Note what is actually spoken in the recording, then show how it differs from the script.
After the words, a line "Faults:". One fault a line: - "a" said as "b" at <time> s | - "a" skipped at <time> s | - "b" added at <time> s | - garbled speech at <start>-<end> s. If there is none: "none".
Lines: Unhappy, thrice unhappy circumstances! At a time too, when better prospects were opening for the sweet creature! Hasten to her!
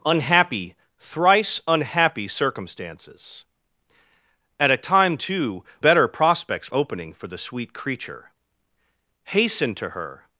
Unhappy, thrice unhappy circumstances! At a time too, better prospects opening for the sweet creature! Hasten to her!
Faults:
- "when" skipped at 5.6 s
- "were" skipped at 6.7 s